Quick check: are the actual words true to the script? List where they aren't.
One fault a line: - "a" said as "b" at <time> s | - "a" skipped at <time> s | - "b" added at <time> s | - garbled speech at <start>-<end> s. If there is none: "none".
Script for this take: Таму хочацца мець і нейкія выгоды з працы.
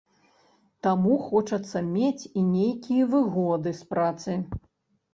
none